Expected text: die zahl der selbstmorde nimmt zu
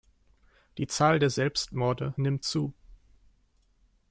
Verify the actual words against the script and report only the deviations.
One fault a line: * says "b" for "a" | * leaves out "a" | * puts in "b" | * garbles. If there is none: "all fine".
all fine